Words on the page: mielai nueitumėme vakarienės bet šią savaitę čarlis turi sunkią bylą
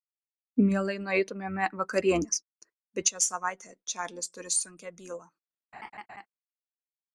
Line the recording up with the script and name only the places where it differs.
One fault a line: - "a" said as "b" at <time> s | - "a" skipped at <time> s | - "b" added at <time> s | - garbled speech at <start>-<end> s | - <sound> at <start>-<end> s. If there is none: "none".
- laugh at 5.7-6.3 s